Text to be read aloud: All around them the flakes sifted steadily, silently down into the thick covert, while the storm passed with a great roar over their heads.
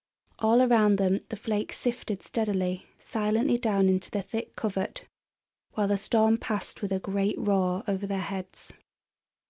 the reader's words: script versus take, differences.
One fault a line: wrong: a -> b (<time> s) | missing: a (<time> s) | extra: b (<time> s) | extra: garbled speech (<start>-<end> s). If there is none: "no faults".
no faults